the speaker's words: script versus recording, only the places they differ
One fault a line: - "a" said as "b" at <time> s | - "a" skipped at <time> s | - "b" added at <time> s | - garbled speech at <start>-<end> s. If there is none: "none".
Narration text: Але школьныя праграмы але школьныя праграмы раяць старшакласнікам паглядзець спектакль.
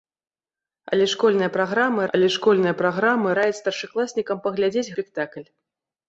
none